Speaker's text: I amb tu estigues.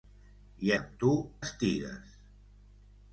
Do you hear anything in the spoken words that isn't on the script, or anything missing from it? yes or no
no